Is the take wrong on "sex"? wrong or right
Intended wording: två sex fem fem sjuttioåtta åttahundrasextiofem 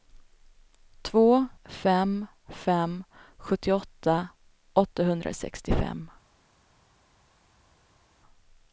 wrong